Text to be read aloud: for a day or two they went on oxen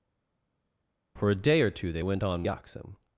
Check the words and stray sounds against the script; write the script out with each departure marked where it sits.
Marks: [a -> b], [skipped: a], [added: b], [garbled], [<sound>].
for a day or two they went on oxen